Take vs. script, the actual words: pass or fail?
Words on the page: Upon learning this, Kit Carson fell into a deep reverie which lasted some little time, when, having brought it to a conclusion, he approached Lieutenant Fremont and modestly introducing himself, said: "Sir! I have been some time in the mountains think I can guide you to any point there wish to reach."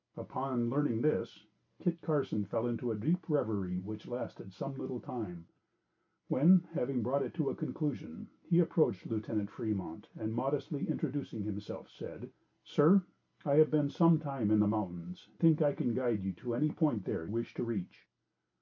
pass